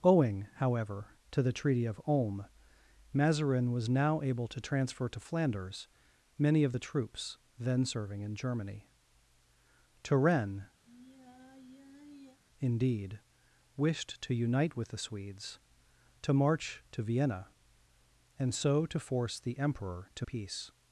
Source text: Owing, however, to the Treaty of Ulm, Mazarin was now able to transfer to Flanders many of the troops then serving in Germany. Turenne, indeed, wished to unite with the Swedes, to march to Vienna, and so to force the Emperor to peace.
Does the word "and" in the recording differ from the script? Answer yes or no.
no